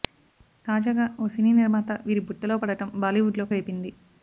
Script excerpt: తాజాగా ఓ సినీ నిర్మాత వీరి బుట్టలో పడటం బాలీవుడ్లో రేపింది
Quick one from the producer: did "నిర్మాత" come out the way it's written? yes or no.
yes